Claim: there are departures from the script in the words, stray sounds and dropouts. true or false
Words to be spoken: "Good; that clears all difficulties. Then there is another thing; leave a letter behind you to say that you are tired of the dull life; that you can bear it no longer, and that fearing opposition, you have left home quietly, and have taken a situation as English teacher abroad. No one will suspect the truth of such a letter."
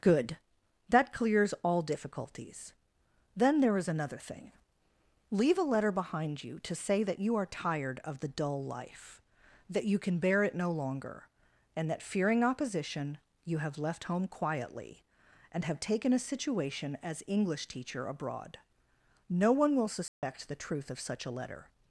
true